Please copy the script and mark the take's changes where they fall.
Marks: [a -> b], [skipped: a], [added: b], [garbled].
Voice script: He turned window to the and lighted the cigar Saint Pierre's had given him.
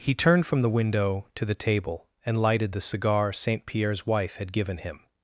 He turned [added: from the] window to the [added: table] and lighted the cigar Saint Pierre's [added: wife] had given him.